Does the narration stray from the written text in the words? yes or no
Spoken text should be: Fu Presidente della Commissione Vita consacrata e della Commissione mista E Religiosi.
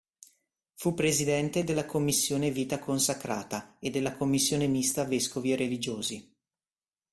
yes